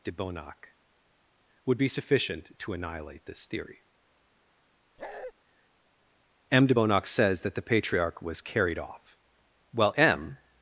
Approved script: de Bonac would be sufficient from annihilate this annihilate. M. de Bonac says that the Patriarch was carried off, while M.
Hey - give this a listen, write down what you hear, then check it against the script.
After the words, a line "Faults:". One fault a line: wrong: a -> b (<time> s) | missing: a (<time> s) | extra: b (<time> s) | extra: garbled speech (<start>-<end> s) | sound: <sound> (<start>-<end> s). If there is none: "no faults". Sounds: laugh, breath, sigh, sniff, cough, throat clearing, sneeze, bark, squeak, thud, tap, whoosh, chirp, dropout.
de Bonac would be sufficient to annihilate this theory. M. de Bonac says that the Patriarch was carried off, while M.
Faults:
wrong: from -> to (2.6 s)
wrong: annihilate -> theory (3.4 s)
sound: bark (5.0-5.3 s)